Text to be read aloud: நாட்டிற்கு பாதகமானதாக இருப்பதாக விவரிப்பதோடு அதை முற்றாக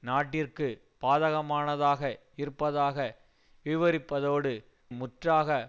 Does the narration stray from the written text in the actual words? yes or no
yes